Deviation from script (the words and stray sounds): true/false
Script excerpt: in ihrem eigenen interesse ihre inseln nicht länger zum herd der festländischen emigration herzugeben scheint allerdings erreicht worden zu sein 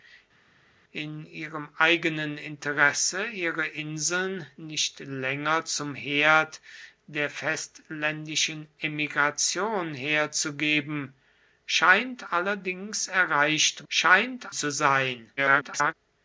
true